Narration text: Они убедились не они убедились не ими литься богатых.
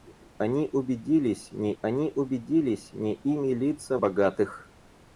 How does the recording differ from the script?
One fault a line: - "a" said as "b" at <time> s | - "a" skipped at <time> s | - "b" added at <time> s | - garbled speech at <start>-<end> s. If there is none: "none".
none